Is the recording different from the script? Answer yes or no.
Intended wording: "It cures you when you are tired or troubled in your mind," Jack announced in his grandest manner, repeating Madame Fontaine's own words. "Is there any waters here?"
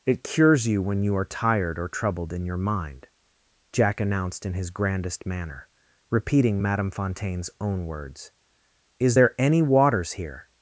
no